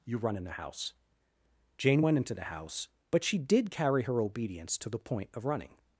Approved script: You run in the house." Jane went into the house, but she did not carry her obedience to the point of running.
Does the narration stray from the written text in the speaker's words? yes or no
yes